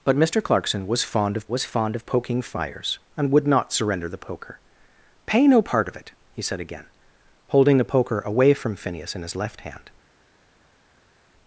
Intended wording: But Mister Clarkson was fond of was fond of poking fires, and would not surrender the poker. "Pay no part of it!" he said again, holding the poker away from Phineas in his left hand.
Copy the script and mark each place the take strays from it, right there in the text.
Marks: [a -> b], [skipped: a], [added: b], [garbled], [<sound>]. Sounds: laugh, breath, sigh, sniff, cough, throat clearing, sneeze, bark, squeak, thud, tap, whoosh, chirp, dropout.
But Mister Clarkson was fond of was fond of poking fires, and would not surrender the poker. "Pay no part of it!" he said again, holding the poker away from Phineas in his left hand.